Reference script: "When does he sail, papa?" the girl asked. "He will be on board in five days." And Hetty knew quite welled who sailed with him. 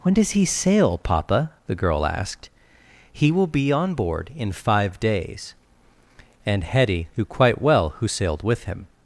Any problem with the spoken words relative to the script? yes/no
yes